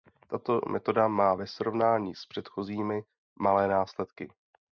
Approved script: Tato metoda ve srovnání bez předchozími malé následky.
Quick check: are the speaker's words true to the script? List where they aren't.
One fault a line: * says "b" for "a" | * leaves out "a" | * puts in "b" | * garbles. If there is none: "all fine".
* puts in "má"
* says "s" for "bez"